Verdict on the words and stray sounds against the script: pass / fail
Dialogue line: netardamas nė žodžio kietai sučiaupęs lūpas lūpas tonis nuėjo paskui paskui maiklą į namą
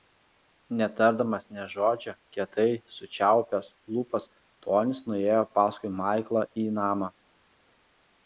fail